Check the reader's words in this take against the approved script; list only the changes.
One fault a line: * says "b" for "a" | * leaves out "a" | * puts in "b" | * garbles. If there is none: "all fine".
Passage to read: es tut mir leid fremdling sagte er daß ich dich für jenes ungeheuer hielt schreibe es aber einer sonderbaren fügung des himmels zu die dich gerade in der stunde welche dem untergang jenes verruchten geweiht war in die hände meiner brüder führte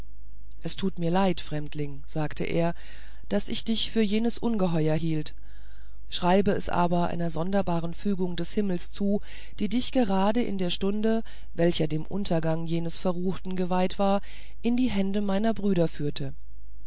all fine